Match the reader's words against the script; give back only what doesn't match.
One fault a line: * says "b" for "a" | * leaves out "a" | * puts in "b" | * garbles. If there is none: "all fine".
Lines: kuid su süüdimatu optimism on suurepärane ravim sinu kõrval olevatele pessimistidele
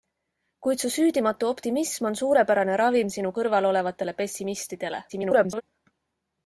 * garbles